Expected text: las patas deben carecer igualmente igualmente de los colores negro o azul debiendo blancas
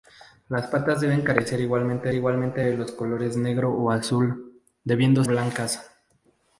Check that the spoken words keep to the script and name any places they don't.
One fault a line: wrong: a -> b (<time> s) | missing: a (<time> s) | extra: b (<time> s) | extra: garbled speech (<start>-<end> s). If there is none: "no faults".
no faults